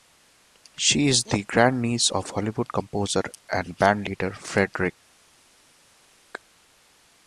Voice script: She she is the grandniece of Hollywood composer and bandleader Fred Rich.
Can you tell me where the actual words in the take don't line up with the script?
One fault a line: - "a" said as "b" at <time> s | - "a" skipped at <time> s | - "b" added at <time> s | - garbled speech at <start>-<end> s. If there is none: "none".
- "she" skipped at 1.1 s